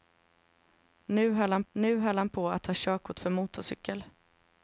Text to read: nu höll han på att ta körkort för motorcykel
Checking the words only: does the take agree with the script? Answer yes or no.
no